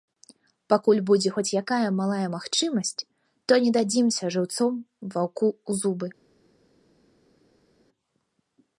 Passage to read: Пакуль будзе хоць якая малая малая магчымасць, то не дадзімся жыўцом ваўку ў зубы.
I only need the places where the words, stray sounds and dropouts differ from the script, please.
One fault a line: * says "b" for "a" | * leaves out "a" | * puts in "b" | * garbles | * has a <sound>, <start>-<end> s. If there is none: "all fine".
* leaves out "малая"